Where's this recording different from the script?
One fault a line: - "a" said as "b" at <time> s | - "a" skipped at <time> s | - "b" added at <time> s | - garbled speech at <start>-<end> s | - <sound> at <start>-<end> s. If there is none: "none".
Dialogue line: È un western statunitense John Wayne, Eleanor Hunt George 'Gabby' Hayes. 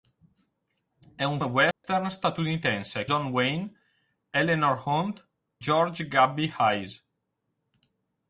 - dropout at 1.7-1.8 s